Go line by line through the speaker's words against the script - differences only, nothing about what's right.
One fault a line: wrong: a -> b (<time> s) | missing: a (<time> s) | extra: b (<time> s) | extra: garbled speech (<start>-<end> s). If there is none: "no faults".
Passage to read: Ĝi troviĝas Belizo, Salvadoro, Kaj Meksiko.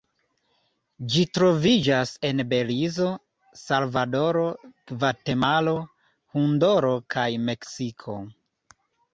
extra: en (2.3 s)
extra: Gvatemalo Honduro (4.9 s)